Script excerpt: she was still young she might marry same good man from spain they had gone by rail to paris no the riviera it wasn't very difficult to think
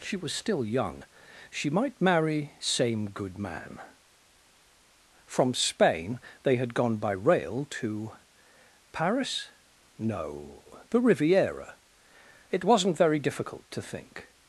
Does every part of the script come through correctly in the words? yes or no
yes